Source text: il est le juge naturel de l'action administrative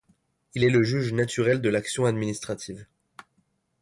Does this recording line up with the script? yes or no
yes